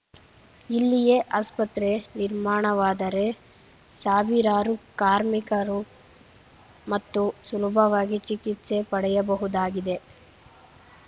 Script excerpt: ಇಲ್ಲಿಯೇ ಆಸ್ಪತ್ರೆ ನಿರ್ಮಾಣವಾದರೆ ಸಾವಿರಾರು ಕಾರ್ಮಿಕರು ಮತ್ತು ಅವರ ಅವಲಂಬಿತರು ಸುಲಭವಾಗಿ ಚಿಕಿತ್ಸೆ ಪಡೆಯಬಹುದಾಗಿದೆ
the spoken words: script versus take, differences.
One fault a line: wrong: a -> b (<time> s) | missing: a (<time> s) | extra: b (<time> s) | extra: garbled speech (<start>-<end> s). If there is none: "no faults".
missing: ಅವರ ಅವಲಂಬಿತರು (7.2 s)